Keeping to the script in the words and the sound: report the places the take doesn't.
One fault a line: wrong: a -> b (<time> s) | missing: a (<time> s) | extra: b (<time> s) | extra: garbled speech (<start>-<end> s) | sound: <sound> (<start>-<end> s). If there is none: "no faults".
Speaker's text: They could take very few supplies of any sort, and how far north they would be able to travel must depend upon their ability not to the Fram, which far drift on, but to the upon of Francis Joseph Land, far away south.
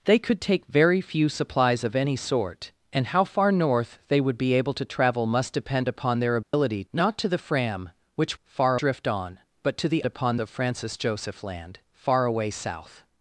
sound: dropout (6.4-6.5 s)